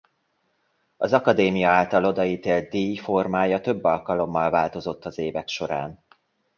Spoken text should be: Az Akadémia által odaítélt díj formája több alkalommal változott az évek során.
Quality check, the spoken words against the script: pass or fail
pass